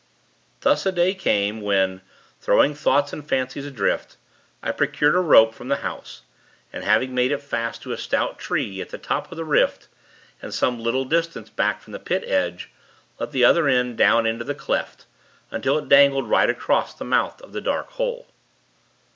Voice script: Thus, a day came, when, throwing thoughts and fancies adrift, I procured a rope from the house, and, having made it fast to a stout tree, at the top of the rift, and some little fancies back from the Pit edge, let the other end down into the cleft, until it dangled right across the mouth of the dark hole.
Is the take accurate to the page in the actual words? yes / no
no